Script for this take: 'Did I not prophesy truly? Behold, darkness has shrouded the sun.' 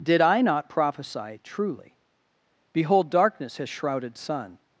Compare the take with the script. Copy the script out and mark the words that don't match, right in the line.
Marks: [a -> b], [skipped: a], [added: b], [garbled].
'Did I not prophesy truly? Behold, darkness has shrouded [skipped: the] sun.'